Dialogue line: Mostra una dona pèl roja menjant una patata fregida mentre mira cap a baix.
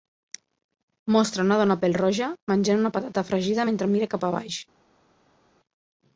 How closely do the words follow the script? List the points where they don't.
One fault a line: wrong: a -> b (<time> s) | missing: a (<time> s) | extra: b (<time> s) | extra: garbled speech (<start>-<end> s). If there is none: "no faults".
no faults